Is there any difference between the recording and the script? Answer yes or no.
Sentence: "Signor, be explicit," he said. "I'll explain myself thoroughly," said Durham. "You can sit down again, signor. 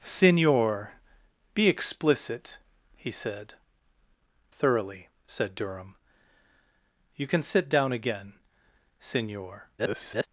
yes